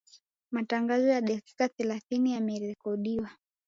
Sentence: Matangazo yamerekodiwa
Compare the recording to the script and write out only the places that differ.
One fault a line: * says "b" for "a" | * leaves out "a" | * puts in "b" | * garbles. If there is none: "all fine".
* puts in "ya dakika thelathini"